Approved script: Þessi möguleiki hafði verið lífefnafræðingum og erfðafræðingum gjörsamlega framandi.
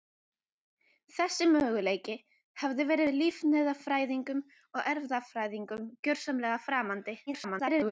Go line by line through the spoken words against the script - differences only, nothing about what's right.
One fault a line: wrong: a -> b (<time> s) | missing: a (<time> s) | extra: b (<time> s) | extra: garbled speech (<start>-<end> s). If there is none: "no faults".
extra: garbled speech (7.3-7.9 s)